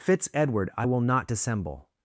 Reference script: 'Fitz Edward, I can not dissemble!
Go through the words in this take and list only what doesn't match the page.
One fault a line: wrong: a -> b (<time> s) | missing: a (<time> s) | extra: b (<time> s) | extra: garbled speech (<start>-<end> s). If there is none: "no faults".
wrong: can -> will (0.8 s)